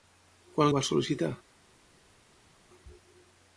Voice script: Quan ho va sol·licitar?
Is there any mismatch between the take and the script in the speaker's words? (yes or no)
no